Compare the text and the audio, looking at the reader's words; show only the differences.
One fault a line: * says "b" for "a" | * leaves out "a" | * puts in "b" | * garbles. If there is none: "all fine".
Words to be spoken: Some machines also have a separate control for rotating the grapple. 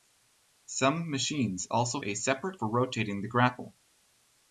* leaves out "have"
* leaves out "control"